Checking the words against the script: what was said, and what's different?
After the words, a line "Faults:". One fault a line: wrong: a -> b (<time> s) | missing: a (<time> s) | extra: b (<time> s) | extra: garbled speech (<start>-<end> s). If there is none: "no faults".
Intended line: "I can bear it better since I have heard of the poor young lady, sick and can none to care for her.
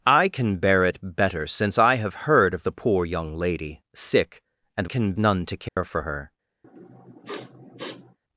"I can bear it better since I have heard of the poor young lady, sick and can none to care for her.
Faults:
no faults